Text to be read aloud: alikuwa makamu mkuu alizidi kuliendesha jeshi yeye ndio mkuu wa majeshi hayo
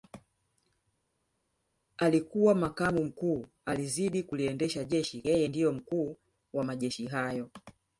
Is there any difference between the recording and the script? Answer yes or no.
no